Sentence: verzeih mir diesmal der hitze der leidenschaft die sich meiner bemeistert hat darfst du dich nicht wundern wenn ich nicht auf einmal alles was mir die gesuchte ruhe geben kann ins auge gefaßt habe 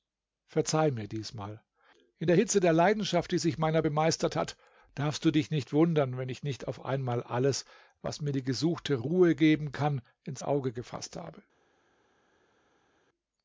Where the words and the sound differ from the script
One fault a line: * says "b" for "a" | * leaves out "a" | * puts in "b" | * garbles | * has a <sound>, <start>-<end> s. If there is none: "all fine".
* puts in "in"